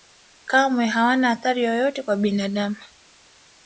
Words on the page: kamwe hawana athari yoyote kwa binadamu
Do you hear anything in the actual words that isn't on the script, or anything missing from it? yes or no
no